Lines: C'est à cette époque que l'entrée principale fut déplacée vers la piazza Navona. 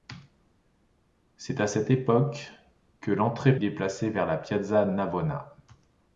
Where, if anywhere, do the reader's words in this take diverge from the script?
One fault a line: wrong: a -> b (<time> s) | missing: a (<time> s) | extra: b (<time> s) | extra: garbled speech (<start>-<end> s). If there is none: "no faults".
missing: principale fut (3.5 s)